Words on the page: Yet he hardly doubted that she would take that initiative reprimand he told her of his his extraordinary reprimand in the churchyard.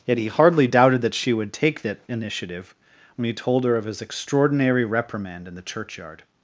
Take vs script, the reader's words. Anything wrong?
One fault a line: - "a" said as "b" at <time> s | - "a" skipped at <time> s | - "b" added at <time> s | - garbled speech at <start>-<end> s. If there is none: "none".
- "reprimand" said as "when" at 3.2 s
- "his" skipped at 4.0 s